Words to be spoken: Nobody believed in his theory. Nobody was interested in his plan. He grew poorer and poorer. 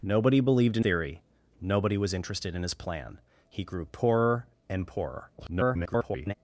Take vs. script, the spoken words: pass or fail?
fail